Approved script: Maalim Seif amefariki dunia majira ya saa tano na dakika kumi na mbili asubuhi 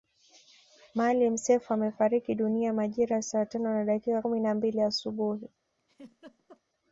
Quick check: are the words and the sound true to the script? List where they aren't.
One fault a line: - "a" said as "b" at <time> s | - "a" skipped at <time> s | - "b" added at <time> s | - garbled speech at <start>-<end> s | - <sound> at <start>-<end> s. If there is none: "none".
- laugh at 5.8-6.6 s